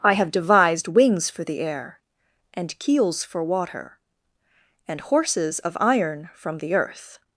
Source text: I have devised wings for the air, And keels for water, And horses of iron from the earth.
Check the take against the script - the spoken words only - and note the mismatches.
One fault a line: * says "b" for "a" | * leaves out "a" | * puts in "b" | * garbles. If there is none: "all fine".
all fine